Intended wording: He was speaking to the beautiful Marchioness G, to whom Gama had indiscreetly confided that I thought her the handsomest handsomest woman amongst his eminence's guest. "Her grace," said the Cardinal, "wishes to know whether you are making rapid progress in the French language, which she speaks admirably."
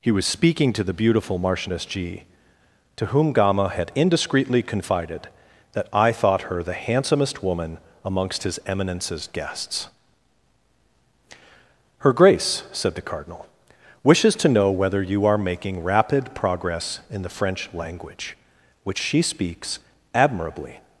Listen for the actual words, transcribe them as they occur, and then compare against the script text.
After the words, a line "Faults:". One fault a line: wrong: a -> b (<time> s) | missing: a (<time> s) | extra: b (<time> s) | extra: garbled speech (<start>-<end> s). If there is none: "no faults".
He was speaking to the beautiful Marchioness G, to whom Gama had indiscreetly confided that I thought her the handsomest woman amongst his eminence's guests. "Her grace," said the Cardinal, "wishes to know whether you are making rapid progress in the French language, which she speaks admirably."
Faults:
missing: handsomest (7.4 s)
wrong: guest -> guests (9.3 s)